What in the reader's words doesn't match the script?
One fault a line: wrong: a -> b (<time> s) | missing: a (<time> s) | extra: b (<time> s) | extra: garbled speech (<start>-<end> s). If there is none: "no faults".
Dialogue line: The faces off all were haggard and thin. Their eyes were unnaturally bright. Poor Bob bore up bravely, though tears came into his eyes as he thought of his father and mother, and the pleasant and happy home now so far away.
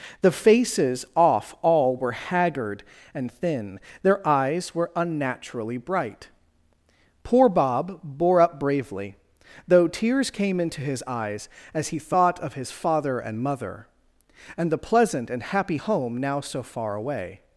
no faults